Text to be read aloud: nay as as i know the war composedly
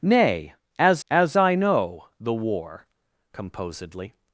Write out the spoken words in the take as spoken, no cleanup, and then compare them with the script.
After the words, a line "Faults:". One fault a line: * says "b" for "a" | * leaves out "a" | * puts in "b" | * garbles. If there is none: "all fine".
nay as as i know the war composedly
Faults:
all fine